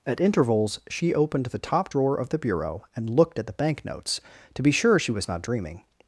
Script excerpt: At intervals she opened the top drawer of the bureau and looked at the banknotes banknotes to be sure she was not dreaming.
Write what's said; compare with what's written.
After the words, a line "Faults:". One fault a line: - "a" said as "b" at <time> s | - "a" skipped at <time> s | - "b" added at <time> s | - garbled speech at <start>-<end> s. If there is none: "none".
At intervals she opened the top drawer of the bureau and looked at the banknotes to be sure she was not dreaming.
Faults:
- "banknotes" skipped at 4.2 s